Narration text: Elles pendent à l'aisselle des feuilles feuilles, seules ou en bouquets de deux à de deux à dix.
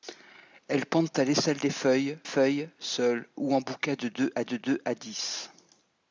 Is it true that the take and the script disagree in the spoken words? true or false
false